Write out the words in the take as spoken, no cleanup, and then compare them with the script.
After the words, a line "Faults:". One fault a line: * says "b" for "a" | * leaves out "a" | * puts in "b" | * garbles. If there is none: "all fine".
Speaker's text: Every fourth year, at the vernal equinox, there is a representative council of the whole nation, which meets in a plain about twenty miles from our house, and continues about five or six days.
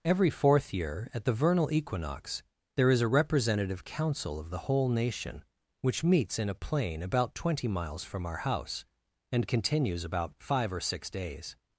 Every fourth year, at the vernal equinox, there is a representative council of the whole nation, which meets in a plain about twenty miles from our house, and continues about five or six days.
Faults:
all fine